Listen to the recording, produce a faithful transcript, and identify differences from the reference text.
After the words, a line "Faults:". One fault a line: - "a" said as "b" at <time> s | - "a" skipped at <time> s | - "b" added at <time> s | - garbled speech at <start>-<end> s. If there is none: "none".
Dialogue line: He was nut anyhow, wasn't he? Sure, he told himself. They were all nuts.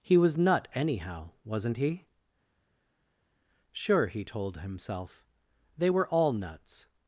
He was nut anyhow, wasn't he? Sure, he told himself. They were all nuts.
Faults:
none